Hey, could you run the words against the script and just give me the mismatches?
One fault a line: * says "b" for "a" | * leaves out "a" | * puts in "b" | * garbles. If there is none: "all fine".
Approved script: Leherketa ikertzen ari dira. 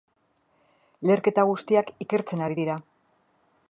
* puts in "guztiak"